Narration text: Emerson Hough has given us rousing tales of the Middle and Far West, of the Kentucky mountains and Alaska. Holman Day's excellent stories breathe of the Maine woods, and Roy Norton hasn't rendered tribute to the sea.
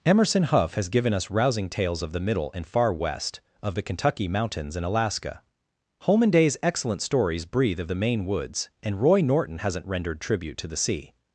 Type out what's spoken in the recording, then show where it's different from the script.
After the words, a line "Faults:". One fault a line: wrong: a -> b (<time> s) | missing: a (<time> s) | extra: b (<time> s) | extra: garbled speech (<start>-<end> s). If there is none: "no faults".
Emerson Hough has given us rousing tales of the Middle and Far West, of the Kentucky mountains and Alaska. Holman Day's excellent stories breathe of the Maine woods, and Roy Norton hasn't rendered tribute to the sea.
Faults:
no faults